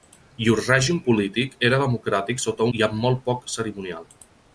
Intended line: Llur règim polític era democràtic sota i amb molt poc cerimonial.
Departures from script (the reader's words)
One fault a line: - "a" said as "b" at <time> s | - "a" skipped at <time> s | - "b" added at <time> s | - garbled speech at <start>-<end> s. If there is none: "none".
none